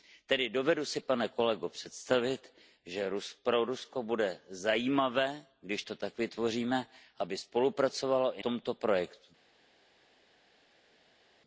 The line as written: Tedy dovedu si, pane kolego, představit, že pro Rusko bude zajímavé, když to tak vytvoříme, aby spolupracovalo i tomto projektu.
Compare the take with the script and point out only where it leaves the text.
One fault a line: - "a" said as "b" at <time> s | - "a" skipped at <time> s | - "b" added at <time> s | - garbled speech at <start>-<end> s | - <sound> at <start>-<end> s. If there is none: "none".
none